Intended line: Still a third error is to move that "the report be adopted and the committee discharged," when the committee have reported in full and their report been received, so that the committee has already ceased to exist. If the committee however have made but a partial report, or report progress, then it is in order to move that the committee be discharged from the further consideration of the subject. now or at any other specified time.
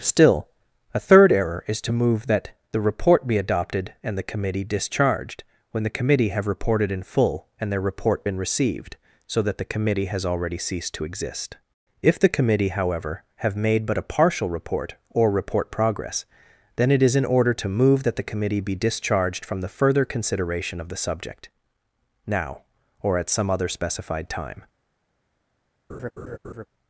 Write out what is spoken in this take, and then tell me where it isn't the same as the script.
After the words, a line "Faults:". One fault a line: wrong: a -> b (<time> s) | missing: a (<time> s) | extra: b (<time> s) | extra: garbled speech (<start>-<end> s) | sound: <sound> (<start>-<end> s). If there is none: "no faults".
Still a third error is to move that "the report be adopted and the committee discharged," when the committee have reported in full and their report been received, so that the committee has already ceased to exist. If the committee however have made but a partial report, or report progress, then it is in order to move that the committee be discharged from the further consideration of the subject. now or at some other specified time.
Faults:
wrong: any -> some (23.3 s)
sound: laugh (25.9-26.7 s)